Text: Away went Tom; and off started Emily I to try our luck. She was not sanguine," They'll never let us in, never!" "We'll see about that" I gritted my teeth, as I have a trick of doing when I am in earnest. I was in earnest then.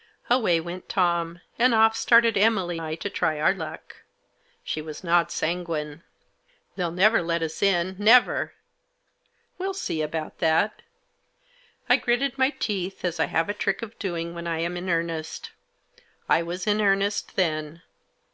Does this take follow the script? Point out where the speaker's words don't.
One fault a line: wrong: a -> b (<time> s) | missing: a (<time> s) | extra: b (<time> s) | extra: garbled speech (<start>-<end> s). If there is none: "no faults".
no faults